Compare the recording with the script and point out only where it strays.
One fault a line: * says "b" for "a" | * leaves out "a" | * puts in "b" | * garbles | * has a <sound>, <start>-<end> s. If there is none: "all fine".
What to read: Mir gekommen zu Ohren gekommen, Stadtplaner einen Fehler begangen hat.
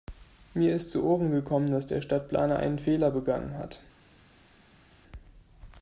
* says "ist" for "gekommen"
* puts in "dass der"